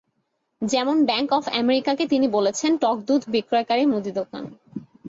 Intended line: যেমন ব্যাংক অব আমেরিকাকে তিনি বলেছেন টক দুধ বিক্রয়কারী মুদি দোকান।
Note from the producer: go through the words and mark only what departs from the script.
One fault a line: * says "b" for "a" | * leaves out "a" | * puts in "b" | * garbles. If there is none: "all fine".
all fine